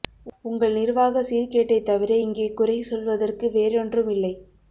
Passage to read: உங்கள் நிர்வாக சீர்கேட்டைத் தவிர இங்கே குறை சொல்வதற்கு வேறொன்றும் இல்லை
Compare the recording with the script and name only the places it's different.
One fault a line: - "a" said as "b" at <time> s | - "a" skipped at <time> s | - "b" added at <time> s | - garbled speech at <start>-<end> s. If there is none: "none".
none